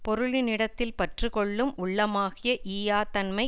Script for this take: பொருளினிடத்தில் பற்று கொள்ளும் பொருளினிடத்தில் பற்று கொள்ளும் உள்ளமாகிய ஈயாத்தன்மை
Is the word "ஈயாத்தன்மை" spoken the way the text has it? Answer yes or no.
yes